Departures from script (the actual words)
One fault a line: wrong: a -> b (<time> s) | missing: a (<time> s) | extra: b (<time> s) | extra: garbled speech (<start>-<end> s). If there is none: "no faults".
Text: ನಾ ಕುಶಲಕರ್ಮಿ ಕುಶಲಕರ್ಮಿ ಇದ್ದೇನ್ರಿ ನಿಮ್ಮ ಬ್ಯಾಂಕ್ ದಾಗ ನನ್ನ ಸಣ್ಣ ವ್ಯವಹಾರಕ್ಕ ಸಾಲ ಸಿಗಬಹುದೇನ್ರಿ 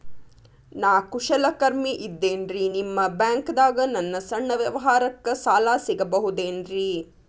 missing: ಕುಶಲಕರ್ಮಿ (1.9 s)